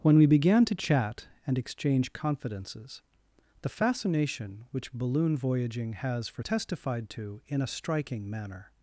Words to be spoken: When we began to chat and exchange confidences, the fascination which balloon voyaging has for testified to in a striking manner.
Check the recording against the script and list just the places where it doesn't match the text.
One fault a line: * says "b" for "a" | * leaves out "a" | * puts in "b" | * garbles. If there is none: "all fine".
all fine